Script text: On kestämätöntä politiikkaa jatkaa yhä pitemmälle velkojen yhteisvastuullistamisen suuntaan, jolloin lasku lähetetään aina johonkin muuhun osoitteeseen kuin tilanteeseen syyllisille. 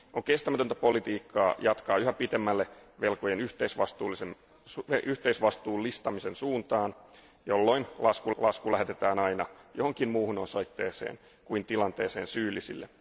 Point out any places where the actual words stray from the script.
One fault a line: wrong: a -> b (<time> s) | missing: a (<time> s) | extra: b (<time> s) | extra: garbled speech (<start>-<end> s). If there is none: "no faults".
extra: lasku (8.4 s)